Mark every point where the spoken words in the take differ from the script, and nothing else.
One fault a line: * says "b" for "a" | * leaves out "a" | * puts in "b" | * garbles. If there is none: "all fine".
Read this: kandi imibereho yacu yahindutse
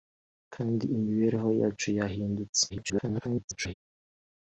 * garbles